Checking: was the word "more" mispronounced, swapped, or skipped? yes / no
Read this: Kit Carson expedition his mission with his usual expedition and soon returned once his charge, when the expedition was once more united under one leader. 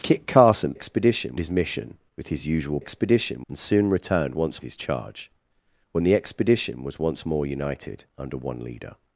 no